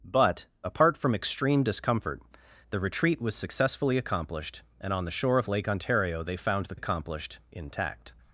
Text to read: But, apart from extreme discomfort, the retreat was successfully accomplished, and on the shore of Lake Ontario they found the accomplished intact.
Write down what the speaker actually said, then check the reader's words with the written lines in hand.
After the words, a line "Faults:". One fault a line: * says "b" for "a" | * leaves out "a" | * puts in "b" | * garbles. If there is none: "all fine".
But, apart from extreme discomfort, the retreat was successfully accomplished, and on the shore of Lake Ontario they found the accomplished intact.
Faults:
all fine